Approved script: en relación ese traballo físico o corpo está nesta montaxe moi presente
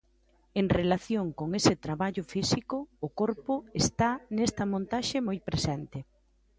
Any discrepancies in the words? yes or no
yes